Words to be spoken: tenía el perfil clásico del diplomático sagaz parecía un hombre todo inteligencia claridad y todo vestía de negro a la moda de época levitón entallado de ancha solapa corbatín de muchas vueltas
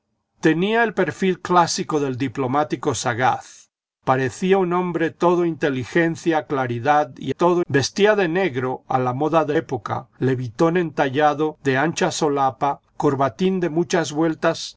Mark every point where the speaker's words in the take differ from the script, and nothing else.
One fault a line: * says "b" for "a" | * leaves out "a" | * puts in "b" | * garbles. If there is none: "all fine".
all fine